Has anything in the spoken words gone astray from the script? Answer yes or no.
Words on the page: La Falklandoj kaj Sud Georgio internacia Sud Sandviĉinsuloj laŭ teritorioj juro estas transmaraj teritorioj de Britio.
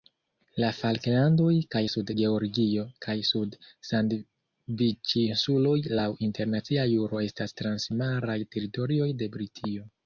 yes